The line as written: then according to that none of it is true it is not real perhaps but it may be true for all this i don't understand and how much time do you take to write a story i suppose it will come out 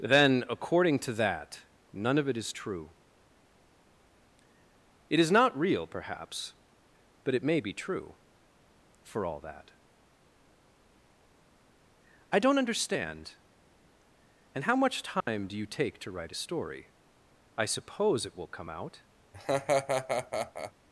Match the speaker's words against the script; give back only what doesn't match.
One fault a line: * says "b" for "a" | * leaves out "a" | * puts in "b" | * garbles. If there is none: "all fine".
* says "that" for "this"